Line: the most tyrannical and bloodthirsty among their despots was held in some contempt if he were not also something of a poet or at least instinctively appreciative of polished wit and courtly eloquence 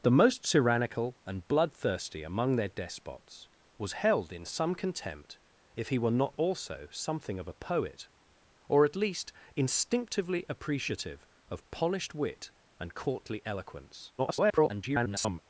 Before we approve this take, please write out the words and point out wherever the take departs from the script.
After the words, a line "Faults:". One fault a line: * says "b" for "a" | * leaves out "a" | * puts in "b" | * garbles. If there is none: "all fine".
the most tyrannical and bloodthirsty among their despots was held in some contempt if he were not also something of a poet or at least instinctively appreciative of polished wit and courtly eloquence [garbled]
Faults:
* garbles